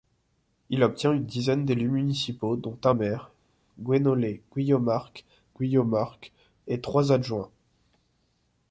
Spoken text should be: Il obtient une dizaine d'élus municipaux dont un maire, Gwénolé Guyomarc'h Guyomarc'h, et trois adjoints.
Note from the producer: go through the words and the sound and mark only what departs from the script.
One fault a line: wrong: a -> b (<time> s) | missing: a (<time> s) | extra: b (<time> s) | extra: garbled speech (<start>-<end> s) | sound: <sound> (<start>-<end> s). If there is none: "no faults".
no faults